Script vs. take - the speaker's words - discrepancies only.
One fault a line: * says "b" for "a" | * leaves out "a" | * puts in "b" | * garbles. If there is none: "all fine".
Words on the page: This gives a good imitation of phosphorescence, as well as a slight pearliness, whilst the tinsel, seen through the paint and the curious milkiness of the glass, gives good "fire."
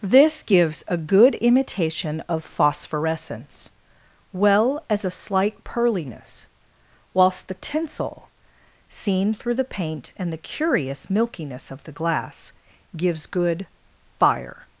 * leaves out "as"